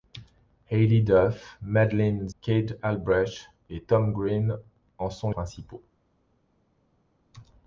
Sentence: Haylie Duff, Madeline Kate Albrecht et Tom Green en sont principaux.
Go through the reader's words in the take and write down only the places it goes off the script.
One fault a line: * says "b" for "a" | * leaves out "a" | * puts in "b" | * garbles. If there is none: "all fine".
all fine